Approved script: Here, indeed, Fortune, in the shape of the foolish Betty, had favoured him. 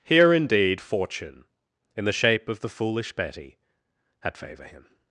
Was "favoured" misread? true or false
true